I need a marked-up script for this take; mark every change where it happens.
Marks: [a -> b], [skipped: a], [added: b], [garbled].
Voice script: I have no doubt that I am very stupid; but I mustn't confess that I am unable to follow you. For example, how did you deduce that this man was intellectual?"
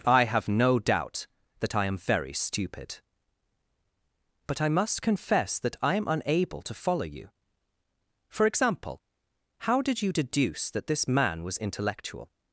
I have no doubt that I am very stupid; but I [mustn't -> must] confess that I am unable to follow you. For example, how did you deduce that this man was intellectual?"